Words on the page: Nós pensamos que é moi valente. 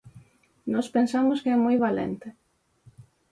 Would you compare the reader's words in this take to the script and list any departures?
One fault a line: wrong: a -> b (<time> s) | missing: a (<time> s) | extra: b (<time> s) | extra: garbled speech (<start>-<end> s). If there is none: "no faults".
no faults